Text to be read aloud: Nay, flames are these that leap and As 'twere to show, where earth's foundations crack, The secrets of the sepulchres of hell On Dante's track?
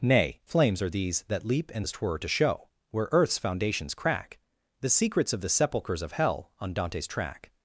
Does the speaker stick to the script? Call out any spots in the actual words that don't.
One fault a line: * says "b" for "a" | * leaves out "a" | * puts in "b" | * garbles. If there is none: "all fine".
all fine